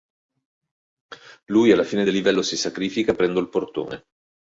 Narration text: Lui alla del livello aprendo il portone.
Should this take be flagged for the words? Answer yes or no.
yes